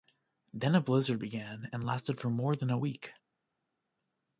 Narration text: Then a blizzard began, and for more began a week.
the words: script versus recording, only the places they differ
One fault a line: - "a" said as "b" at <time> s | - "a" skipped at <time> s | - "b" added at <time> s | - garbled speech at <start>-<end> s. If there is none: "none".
- "lasted" added at 1.8 s
- "began" said as "than" at 2.6 s